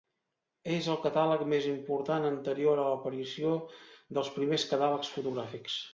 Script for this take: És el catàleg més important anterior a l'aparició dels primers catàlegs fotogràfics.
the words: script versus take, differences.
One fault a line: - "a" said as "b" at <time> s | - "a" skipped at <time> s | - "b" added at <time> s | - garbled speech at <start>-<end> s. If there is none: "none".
none